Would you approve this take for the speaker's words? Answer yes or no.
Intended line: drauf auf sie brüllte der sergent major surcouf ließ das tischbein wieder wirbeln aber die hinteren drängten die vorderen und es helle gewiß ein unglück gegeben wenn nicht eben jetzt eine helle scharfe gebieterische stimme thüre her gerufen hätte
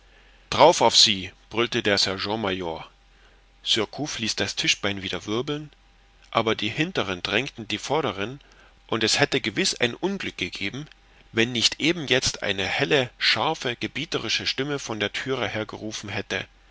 no